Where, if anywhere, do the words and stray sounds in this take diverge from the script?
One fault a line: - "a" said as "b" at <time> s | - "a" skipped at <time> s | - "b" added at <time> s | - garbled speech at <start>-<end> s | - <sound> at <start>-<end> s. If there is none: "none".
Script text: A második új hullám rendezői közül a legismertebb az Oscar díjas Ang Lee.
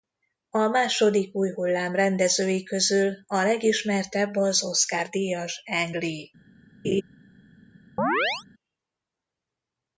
- laugh at 6.8-7.0 s
- chirp at 8.0-8.4 s